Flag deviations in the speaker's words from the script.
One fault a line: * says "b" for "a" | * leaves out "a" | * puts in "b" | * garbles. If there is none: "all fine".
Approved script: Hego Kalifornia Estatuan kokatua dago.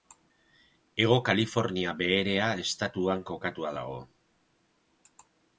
* puts in "Beherea"